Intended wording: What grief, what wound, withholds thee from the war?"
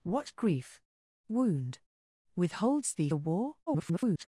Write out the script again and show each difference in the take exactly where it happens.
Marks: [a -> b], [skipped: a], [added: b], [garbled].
What grief, [skipped: what] wound, withholds thee [skipped: from] the war?" [garbled]